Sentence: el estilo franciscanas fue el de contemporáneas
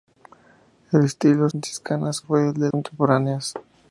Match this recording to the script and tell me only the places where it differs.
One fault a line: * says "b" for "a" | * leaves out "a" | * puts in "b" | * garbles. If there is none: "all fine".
all fine